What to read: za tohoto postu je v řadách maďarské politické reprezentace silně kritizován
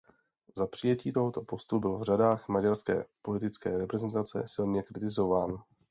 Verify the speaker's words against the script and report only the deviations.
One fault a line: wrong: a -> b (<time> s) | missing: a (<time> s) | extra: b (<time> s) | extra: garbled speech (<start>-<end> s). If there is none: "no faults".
extra: přijetí (0.7 s)
wrong: je -> byl (1.8 s)